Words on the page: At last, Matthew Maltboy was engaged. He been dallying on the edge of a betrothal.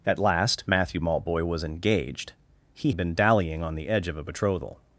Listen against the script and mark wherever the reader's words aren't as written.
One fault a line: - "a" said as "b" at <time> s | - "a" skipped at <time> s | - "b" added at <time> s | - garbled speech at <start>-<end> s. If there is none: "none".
none